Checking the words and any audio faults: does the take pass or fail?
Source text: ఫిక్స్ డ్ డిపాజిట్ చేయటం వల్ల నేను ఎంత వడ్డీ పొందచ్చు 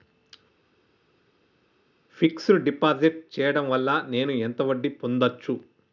pass